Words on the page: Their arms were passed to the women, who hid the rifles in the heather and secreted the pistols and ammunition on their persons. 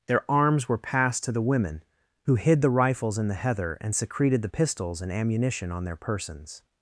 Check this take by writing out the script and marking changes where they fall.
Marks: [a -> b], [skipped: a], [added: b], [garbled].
Their arms were passed to the women, who hid the rifles in the heather and secreted the pistols and ammunition on their persons.